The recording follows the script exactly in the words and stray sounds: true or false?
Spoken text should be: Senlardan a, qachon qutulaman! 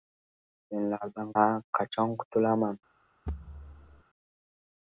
false